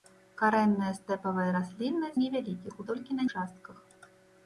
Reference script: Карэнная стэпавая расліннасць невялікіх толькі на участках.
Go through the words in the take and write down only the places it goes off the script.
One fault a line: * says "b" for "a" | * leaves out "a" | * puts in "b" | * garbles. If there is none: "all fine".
all fine